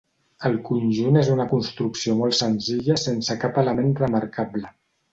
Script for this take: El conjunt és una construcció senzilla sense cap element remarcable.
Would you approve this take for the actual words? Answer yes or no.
no